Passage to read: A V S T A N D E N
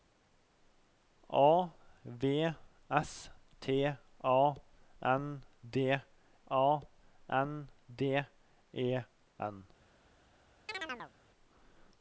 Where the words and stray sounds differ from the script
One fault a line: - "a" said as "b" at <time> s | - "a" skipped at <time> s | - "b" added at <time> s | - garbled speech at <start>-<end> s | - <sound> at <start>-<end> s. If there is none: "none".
- "A N D" added at 6.5 s
- chirp at 10.7-11.1 s